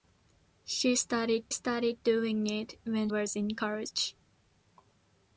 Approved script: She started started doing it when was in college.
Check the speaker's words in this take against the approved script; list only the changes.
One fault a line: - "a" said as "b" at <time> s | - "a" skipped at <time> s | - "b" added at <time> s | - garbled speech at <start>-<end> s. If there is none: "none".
none